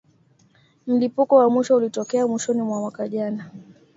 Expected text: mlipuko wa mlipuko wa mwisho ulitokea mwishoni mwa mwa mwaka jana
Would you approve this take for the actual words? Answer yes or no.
no